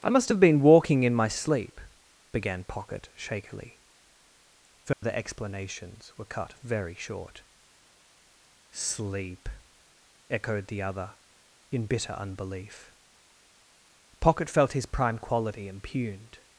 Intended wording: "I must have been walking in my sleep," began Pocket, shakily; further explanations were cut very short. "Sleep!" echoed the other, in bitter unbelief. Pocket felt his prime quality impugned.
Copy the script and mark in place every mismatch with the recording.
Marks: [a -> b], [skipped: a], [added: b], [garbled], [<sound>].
"I must have been walking in my sleep," began Pocket, shakily; further [dropout] explanations were cut very short. "Sleep!" echoed the other, in bitter unbelief. Pocket felt his prime quality impugned.